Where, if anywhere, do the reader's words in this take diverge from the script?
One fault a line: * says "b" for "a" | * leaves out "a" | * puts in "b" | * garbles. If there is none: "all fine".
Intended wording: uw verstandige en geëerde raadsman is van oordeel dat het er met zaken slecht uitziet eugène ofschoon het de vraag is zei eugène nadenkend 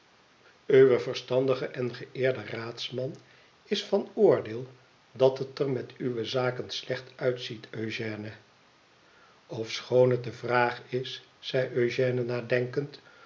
* puts in "uwe"